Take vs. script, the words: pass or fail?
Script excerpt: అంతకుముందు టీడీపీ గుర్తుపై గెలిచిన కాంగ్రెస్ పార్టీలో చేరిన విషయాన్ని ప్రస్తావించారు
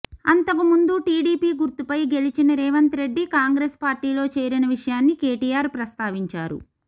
fail